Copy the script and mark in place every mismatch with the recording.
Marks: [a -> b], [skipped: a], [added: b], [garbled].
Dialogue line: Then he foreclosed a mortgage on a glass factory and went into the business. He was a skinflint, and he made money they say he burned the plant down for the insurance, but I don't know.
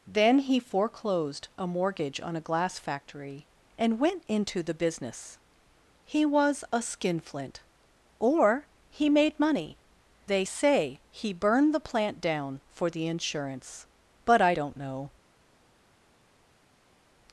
Then he foreclosed a mortgage on a glass factory and went into the business. He was a skinflint, [and -> or] he made money they say he burned the plant down for the insurance, but I don't know.